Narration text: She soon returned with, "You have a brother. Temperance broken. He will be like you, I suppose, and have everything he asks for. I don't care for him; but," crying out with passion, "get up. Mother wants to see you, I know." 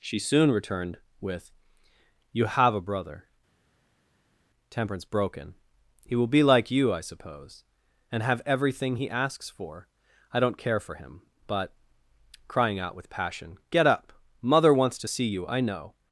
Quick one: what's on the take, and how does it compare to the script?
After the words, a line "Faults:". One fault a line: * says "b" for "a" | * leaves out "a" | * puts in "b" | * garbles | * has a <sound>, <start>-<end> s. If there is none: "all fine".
She soon returned with, "You have a brother. Temperance broken. He will be like you, I suppose, and have everything he asks for. I don't care for him; but," crying out with passion, "get up. Mother wants to see you, I know."
Faults:
all fine